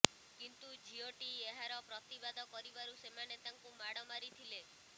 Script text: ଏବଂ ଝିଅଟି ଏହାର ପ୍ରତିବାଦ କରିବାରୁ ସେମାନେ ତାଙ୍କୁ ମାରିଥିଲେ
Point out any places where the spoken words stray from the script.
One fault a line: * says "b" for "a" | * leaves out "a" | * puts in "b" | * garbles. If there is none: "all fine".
* says "କିନ୍ତୁ" for "ଏବଂ"
* puts in "ମାଡ଼"